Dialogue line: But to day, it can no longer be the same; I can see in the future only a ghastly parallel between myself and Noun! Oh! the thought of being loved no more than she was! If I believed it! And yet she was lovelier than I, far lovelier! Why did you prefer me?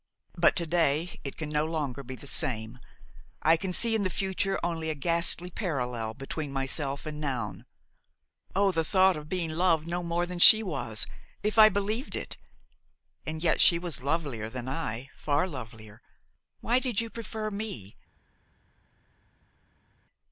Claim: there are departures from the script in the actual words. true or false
false